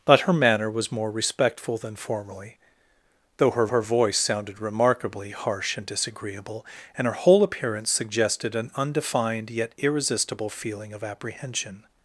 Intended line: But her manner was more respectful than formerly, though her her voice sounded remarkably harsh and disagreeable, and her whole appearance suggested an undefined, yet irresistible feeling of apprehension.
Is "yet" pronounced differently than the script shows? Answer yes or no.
no